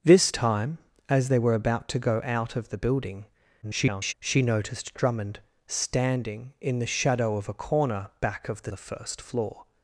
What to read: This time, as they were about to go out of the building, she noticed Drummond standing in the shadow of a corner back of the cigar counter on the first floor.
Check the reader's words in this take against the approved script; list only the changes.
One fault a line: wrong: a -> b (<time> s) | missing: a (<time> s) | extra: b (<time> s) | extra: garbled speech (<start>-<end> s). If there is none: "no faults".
extra: garbled speech (3.6-4.1 s)
missing: cigar counter on (8.7 s)